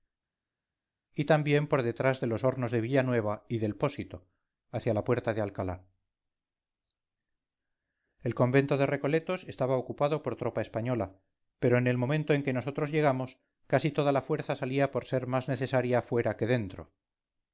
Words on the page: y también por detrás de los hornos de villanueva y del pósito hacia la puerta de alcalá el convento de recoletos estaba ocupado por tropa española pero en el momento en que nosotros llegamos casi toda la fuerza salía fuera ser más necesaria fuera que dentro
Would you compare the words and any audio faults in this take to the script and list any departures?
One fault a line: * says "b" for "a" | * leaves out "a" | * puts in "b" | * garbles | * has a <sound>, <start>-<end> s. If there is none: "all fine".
* says "por" for "fuera"